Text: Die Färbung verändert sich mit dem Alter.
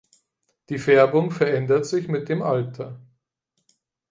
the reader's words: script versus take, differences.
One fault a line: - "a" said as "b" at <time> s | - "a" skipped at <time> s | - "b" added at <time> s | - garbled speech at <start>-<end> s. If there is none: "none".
none